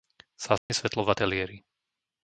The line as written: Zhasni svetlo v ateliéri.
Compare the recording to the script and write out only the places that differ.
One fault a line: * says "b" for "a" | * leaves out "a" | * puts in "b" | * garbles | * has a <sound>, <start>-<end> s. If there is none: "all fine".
* has a dropout, 0.6-0.7 s